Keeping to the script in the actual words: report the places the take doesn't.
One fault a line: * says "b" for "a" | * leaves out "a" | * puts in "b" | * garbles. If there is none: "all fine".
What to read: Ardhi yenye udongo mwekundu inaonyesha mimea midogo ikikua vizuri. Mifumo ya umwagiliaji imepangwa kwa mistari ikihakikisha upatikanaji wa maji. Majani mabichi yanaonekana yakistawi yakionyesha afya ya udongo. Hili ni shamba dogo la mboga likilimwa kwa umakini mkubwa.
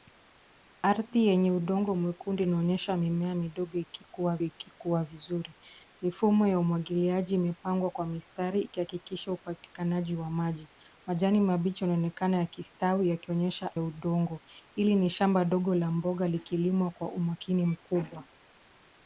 * puts in "ikikua"
* leaves out "afya"